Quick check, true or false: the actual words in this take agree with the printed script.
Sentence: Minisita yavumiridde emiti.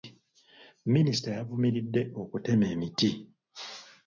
false